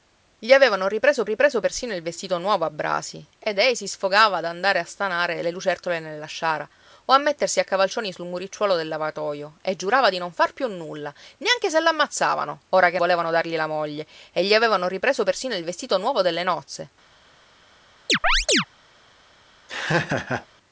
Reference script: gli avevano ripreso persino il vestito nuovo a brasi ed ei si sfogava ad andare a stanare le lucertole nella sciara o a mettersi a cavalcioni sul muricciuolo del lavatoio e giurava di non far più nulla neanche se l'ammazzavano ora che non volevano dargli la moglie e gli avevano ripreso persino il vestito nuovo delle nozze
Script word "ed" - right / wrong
right